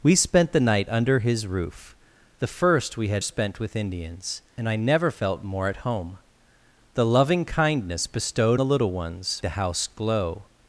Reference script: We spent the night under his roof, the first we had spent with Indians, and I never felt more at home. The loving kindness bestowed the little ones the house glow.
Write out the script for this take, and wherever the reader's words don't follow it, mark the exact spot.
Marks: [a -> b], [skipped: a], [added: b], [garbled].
We spent the night under his roof, the first we had spent with Indians, and I never felt more at home. The loving kindness bestowed the little ones the house glow.